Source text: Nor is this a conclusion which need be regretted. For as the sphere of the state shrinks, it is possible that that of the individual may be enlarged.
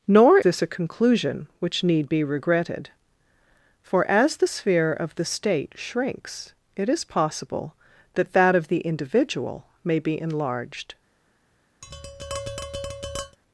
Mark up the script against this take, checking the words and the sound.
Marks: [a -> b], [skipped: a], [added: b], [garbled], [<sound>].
Nor [skipped: is] this a conclusion which need be regretted. For as the sphere of the state shrinks, it is possible that that of the individual may be enlarged. [tap]